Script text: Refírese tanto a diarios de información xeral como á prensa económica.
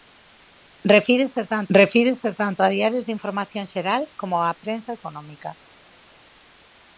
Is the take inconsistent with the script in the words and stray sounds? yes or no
yes